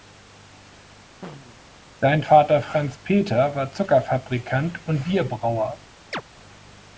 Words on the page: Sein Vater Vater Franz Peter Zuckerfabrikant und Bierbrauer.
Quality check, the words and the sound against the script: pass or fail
fail